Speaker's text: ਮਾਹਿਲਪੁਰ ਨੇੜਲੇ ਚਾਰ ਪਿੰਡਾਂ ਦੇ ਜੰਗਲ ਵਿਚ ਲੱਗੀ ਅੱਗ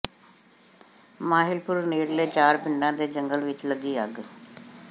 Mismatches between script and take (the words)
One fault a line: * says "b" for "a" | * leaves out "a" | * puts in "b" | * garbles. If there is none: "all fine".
all fine